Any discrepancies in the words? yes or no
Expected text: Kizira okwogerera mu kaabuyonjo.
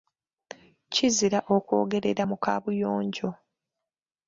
no